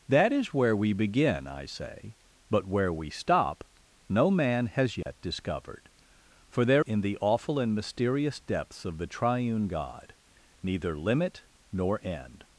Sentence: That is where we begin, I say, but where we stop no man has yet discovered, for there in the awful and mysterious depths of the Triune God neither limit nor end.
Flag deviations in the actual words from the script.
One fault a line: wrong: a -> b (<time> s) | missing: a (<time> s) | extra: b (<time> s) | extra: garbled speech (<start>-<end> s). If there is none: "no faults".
no faults